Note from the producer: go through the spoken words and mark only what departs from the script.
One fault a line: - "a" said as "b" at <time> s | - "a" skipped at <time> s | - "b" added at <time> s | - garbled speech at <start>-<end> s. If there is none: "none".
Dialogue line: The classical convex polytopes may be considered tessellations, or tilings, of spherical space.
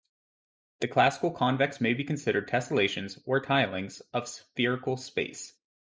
- "polytopes" skipped at 1.8 s